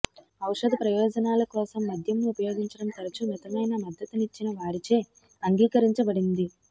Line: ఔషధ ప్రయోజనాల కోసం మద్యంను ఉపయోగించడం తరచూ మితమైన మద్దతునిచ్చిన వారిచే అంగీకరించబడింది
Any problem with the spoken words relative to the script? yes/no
no